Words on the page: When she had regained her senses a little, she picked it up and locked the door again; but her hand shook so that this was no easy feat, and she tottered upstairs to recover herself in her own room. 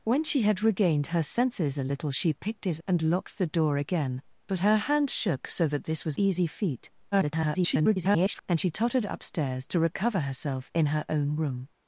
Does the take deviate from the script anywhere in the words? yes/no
yes